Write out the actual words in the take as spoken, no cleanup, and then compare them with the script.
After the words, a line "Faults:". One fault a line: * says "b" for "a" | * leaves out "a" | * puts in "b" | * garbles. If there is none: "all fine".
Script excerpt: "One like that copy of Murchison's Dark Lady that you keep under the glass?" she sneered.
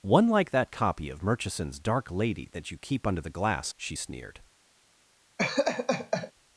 "One like that copy of Murchison's Dark Lady that you keep under the glass?" she sneered.
Faults:
all fine